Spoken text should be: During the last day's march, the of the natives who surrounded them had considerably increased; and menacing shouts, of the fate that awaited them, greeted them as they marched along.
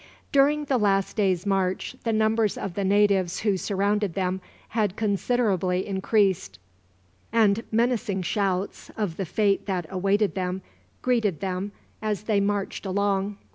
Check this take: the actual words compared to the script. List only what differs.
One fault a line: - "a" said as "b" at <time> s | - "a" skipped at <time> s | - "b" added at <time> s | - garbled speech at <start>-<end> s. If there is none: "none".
- "numbers" added at 2.1 s